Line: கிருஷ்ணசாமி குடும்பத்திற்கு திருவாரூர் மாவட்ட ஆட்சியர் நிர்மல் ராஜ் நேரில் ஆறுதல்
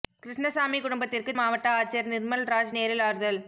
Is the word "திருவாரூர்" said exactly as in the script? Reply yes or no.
no